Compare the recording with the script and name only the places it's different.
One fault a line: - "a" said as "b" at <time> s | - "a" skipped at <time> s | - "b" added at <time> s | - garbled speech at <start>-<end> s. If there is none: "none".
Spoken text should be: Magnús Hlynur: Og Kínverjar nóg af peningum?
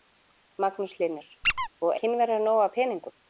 none